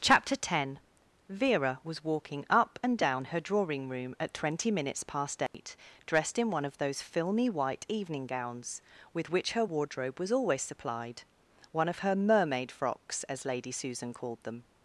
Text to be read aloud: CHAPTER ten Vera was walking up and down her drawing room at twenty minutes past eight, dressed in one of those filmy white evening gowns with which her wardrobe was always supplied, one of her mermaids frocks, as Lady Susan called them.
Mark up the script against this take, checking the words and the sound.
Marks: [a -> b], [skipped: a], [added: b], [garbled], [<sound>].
CHAPTER ten Vera was walking up and down her drawing room at twenty minutes past eight, [dropout] dressed in one of those filmy white evening gowns with which her wardrobe was always supplied, one of her [mermaids -> mermaid] frocks, as Lady Susan called them.